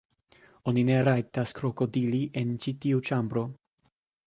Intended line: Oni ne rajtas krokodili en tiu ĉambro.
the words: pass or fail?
fail